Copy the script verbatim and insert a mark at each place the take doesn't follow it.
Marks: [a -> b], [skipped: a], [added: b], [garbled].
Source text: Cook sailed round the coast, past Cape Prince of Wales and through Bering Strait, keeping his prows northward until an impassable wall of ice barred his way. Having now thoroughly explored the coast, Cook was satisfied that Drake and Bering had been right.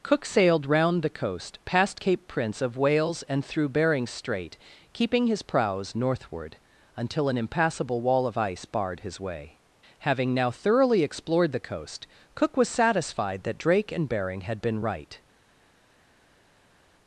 Cook sailed round the coast, past Cape Prince of Wales and through Bering Strait, keeping his prows northward until an impassable wall of ice barred his way. Having now thoroughly explored the coast, Cook was satisfied that Drake and Bering had been right.